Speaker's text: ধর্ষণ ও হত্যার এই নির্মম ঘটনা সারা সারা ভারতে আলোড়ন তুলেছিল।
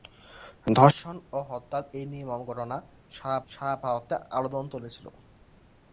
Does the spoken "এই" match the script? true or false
true